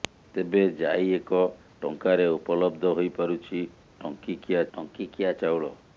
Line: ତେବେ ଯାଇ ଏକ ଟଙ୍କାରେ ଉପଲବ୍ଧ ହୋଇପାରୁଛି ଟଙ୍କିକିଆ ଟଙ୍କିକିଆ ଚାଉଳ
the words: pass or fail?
pass